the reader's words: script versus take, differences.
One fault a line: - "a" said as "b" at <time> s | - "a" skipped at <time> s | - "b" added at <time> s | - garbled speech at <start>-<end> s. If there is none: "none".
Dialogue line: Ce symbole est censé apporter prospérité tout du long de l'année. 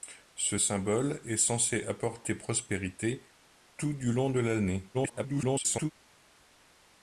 - garbled speech at 4.9-5.9 s